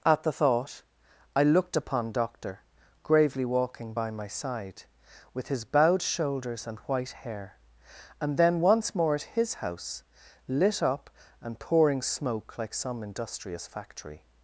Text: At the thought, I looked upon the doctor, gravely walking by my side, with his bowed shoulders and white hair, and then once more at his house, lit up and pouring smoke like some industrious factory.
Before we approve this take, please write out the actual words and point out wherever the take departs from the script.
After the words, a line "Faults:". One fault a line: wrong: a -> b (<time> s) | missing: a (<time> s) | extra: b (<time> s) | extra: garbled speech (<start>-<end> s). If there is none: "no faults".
At the thought, I looked upon doctor, gravely walking by my side, with his bowed shoulders and white hair, and then once more at his house, lit up and pouring smoke like some industrious factory.
Faults:
missing: the (2.1 s)